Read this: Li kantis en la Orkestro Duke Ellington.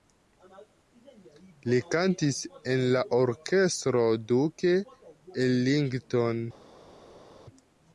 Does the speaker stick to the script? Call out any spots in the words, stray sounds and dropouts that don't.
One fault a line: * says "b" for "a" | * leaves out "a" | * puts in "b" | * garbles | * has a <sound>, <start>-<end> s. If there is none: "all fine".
all fine